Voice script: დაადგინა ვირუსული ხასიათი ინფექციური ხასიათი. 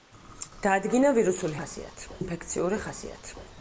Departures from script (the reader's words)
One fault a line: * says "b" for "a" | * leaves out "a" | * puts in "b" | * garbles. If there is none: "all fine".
all fine